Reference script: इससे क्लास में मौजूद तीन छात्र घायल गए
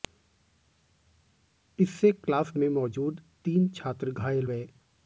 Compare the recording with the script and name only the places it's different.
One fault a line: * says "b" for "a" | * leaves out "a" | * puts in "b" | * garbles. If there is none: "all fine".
all fine